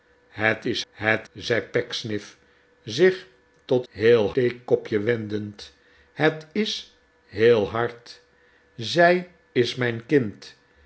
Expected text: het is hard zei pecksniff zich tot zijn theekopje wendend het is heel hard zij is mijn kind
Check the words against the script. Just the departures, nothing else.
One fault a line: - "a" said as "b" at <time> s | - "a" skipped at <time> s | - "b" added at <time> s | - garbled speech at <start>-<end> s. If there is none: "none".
- "hard" said as "het" at 0.9 s
- "zijn" said as "heel" at 3.9 s